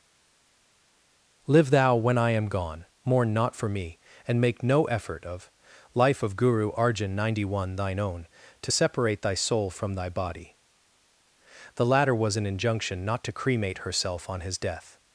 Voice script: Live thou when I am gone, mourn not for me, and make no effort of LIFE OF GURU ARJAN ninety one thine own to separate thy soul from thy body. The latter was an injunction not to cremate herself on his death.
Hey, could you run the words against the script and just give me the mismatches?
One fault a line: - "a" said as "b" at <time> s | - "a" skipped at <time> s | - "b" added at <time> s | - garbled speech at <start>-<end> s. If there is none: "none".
none